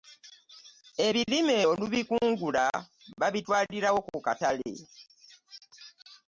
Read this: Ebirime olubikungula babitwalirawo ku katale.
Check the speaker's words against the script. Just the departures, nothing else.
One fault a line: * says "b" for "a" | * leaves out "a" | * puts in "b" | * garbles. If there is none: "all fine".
all fine